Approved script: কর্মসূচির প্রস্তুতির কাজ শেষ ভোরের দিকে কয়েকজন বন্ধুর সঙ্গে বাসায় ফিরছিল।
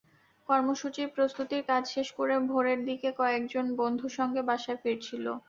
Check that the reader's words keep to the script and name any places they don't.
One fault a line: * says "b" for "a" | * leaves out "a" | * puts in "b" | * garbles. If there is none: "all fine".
* puts in "করে"